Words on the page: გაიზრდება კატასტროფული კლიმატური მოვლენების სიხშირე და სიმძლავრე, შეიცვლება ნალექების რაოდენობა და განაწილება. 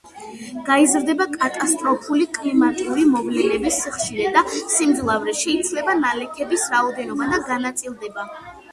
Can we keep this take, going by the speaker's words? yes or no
yes